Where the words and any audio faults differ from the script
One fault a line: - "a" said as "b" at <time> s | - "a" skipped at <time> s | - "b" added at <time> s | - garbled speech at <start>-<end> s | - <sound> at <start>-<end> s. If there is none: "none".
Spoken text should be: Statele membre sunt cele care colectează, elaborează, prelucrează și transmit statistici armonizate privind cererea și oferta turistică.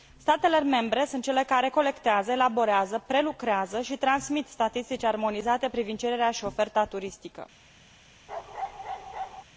- bark at 8.3-9.4 s